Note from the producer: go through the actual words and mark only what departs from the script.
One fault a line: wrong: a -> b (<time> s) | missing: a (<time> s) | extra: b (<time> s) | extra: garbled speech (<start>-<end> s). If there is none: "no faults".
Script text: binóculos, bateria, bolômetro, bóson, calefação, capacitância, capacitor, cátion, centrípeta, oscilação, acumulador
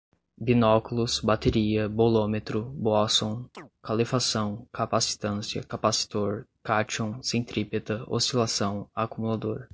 no faults